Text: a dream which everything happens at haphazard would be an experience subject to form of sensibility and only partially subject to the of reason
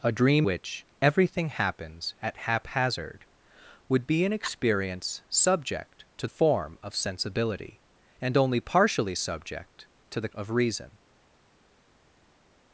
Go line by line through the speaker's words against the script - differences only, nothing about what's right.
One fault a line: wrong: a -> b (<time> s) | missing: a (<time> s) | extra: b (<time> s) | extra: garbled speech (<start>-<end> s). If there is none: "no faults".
no faults